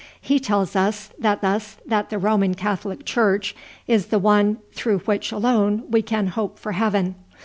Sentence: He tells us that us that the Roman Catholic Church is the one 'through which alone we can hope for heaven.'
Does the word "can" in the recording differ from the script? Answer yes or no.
no